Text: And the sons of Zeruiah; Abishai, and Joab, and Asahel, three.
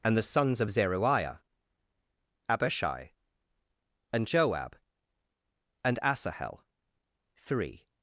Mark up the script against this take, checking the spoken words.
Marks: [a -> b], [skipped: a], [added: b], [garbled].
And the sons of Zeruiah; Abishai, and Joab, and Asahel, three.